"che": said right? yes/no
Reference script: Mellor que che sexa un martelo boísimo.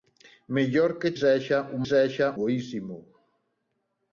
no